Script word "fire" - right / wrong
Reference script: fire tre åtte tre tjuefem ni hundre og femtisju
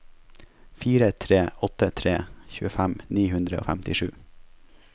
right